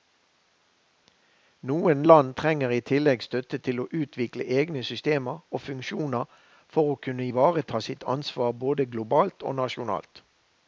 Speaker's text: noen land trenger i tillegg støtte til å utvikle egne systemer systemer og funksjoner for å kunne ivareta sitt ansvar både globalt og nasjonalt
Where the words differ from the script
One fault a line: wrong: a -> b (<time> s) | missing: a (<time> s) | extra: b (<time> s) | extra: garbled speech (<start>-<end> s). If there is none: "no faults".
missing: systemer (5.4 s)